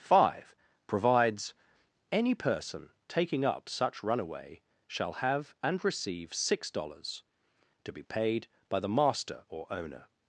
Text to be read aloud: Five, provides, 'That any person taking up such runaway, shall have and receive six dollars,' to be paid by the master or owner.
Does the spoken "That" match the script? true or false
false